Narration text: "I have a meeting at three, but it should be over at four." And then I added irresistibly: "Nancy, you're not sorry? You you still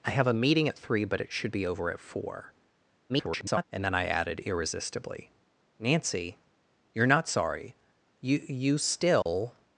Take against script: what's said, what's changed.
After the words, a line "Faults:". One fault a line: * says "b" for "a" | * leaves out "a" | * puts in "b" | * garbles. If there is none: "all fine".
"I have a meeting at three, but it should be over at four." [garbled] And then I added irresistibly: "Nancy, you're not sorry? You you still
Faults:
* garbles